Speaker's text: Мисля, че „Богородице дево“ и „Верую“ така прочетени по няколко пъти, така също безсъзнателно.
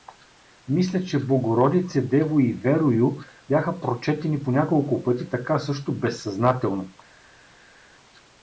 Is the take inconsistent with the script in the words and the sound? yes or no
yes